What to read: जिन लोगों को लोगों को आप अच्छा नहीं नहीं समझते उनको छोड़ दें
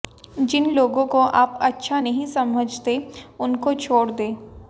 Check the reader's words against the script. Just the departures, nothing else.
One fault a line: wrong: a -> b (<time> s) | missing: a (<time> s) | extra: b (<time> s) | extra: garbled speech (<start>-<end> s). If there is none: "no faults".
missing: लोगों को (1.2 s)
missing: नहीं (2.3 s)